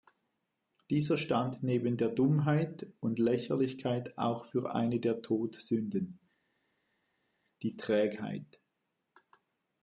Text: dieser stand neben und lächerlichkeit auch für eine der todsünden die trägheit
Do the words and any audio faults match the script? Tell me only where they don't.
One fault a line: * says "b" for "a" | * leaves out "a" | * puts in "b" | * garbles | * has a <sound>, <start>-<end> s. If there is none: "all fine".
* puts in "der dummheit"